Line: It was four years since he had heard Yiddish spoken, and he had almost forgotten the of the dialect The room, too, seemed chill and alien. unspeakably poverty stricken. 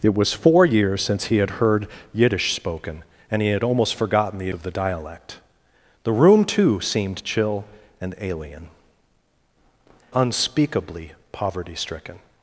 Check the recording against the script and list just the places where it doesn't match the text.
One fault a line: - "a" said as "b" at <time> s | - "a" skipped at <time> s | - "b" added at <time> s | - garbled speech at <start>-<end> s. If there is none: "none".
none